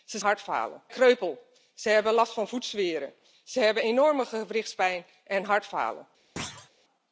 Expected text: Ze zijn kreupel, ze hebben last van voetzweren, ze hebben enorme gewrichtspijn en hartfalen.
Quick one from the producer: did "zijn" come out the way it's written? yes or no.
no